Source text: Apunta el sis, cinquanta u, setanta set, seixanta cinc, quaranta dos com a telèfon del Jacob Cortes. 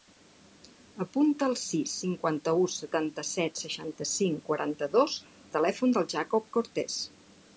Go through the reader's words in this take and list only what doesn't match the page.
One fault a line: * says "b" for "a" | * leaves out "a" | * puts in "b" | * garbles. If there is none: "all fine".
* leaves out "com"